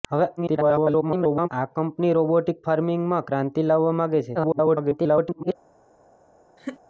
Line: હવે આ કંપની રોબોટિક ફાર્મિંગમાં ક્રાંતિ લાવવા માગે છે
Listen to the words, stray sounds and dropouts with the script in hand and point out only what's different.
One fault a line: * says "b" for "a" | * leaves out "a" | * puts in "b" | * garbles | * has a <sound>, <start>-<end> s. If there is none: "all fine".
* garbles
* garbles
* has a laugh, 6.6-6.8 s